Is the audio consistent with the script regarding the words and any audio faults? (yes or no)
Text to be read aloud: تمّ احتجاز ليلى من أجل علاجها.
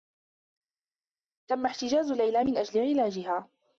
yes